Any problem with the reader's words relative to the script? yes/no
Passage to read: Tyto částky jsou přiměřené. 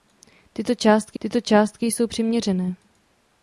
yes